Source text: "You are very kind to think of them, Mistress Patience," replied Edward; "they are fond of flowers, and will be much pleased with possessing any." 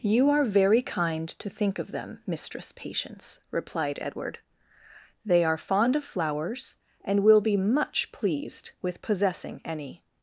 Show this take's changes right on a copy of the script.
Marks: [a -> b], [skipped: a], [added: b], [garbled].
"You are very kind to think of them, Mistress Patience," replied Edward; "they are fond of flowers, and will be much pleased with possessing any."